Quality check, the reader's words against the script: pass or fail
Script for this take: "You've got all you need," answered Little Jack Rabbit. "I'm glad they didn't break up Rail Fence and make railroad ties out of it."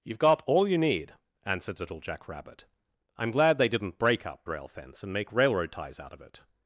pass